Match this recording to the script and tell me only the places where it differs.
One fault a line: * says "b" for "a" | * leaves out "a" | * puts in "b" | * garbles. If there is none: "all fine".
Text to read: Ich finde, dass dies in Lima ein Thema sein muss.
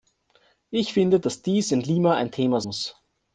* leaves out "sein"